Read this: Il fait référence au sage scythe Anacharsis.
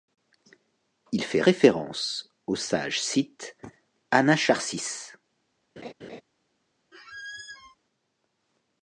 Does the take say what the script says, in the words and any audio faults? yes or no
no